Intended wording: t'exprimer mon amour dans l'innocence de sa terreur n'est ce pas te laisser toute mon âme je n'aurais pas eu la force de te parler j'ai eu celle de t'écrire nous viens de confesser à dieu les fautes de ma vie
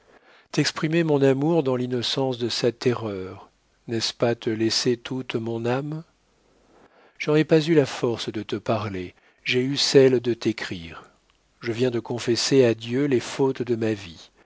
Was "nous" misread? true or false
true